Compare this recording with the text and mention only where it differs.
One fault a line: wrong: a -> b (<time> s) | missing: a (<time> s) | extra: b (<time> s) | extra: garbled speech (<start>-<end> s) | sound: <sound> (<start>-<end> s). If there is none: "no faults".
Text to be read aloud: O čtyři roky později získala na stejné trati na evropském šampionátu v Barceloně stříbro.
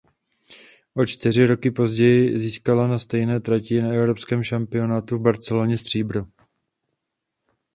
no faults